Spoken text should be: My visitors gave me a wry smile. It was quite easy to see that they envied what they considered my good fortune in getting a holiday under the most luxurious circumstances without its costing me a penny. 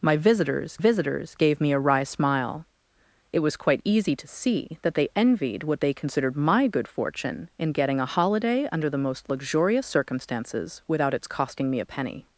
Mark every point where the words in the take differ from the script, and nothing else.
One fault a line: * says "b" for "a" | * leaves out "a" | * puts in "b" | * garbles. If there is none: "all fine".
* puts in "visitors"